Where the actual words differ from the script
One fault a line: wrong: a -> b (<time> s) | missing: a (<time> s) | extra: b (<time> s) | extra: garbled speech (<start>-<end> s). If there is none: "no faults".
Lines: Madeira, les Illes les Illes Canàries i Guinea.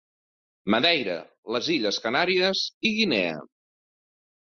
missing: les Illes (2.0 s)